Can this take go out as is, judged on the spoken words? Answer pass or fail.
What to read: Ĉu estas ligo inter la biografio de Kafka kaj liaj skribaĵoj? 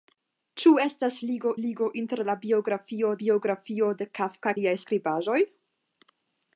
fail